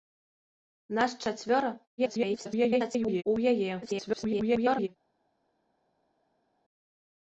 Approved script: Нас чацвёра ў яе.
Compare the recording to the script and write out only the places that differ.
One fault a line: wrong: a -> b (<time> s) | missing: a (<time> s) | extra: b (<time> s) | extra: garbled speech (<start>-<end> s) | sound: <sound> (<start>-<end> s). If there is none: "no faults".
extra: garbled speech (2.0-3.2 s)
extra: garbled speech (3.8-4.9 s)